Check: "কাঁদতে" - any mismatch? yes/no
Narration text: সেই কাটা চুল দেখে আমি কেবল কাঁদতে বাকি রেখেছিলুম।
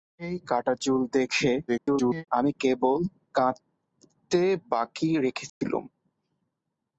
no